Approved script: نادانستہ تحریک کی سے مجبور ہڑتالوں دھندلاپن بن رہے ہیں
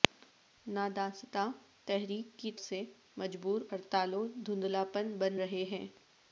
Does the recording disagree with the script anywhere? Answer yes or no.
no